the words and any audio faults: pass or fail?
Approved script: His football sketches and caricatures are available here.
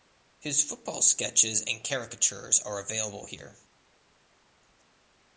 pass